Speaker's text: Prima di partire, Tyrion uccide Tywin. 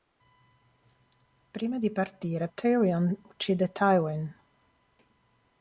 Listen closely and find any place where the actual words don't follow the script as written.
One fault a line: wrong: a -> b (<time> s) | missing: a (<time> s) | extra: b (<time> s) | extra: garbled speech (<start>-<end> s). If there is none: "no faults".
no faults